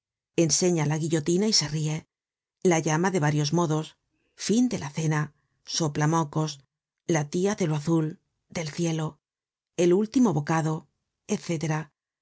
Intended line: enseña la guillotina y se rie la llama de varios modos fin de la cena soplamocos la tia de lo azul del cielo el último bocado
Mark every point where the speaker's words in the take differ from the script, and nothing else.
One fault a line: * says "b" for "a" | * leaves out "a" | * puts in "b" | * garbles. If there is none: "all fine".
all fine